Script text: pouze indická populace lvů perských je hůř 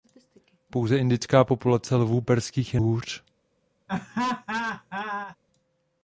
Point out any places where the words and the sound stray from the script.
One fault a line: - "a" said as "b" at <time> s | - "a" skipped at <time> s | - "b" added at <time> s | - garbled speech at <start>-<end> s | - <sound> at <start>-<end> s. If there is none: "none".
- laugh at 3.9-5.4 s